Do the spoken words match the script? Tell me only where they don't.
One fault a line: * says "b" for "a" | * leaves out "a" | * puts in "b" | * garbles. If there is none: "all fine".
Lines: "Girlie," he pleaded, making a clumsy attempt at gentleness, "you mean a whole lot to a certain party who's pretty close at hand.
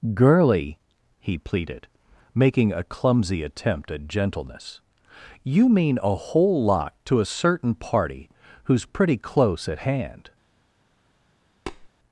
all fine